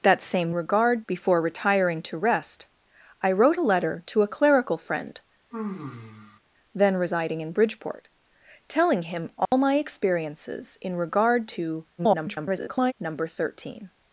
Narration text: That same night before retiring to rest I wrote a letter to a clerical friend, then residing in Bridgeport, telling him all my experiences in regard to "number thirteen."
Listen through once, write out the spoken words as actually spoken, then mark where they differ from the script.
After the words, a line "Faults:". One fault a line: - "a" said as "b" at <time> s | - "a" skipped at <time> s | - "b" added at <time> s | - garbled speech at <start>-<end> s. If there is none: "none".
That same regard before retiring to rest I wrote a letter to a clerical friend, then residing in Bridgeport, telling him all my experiences in regard to [garbled] "number thirteen."
Faults:
- "night" said as "regard" at 0.5 s
- garbled speech at 12.0-12.9 s